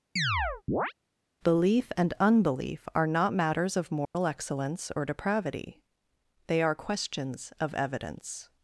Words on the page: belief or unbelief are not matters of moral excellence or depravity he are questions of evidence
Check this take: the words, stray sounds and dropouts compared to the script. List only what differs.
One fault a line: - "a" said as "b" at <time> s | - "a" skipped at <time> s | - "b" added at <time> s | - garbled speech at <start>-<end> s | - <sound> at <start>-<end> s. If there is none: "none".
- chirp at 0.2-0.9 s
- "or" said as "and" at 2.0 s
- dropout at 4.0-4.1 s
- "he" said as "they" at 6.5 s